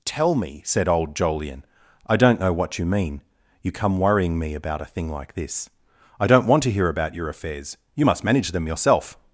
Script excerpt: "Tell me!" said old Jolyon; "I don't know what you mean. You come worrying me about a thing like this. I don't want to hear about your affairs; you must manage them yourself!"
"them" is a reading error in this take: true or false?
false